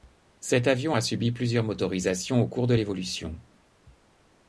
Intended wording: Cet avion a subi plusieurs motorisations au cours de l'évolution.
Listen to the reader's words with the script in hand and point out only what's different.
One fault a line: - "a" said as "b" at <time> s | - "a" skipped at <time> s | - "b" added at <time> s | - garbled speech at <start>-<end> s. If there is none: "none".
none